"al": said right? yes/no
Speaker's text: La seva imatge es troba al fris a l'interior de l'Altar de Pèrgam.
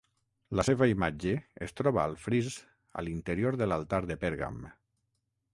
yes